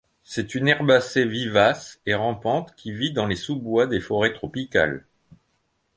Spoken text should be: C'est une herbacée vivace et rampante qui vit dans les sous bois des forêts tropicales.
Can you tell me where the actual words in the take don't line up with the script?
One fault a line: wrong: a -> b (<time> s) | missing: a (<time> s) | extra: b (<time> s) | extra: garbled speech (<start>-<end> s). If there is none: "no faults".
no faults